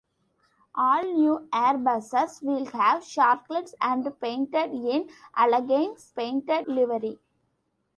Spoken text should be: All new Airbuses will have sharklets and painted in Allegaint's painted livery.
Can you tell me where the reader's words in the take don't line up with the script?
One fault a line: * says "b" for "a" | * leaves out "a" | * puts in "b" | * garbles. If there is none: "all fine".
all fine